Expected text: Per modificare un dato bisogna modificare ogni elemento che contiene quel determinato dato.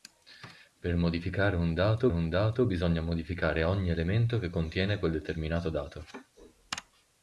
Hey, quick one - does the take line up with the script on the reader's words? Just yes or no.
no